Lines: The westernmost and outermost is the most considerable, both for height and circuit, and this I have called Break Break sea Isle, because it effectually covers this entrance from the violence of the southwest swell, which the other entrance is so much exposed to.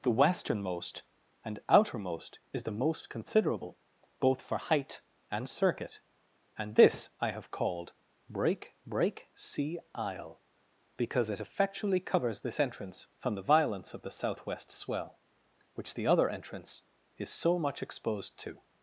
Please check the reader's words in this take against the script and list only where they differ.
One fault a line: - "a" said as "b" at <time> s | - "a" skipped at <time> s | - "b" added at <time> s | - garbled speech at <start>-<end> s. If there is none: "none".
none